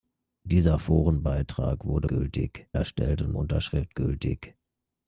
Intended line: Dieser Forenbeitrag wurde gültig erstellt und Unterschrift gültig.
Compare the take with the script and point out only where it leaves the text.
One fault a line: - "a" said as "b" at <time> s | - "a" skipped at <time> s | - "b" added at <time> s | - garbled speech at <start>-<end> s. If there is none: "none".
none